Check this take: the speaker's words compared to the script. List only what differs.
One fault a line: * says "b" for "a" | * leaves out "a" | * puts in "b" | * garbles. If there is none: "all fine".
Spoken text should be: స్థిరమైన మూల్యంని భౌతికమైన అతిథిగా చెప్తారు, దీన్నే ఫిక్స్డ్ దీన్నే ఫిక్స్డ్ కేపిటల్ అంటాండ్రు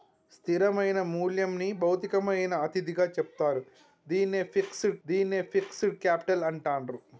all fine